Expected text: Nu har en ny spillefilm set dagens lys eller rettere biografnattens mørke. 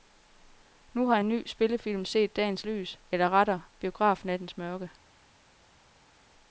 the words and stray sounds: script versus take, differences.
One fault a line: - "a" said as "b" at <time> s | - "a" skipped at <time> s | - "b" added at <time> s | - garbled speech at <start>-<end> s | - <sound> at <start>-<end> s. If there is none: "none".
none